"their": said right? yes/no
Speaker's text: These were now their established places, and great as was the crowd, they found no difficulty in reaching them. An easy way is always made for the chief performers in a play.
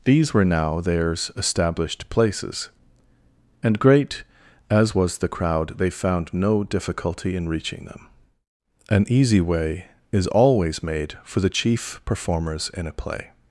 no